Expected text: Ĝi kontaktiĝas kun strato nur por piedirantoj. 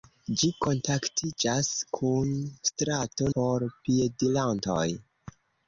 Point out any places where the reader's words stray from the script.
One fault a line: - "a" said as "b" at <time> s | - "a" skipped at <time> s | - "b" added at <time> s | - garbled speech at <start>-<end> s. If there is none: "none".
- "nur" skipped at 3.3 s